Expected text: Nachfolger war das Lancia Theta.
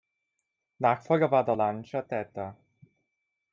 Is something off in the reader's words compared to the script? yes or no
yes